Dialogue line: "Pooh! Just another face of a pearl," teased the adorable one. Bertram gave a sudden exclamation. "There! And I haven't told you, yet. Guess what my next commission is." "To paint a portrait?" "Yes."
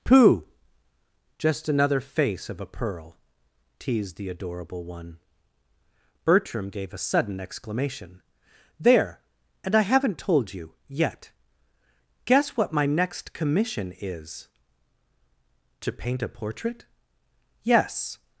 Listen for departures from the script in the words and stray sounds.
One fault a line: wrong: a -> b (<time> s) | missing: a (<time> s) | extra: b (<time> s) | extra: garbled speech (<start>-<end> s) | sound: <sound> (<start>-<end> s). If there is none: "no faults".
no faults